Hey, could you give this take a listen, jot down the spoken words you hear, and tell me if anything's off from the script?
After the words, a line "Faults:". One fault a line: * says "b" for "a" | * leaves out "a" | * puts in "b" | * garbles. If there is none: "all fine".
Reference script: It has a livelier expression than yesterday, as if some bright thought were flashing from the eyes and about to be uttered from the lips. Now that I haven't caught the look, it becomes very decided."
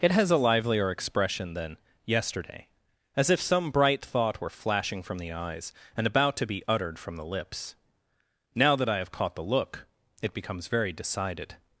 It has a livelier expression than yesterday, as if some bright thought were flashing from the eyes and about to be uttered from the lips. Now that I have caught the look, it becomes very decided."
Faults:
* says "have" for "haven't"